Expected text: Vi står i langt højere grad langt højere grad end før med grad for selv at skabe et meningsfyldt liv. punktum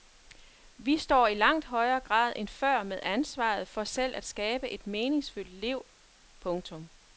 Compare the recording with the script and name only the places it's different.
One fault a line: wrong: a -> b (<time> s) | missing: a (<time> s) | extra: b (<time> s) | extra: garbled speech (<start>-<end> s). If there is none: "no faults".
missing: langt højere grad (2.3 s)
wrong: grad -> ansvaret (3.0 s)